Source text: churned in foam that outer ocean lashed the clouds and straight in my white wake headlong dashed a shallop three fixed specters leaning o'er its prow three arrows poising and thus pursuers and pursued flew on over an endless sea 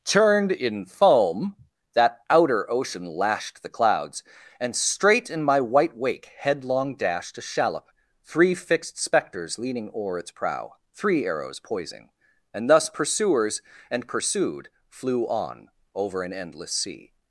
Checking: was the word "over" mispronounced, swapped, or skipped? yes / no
no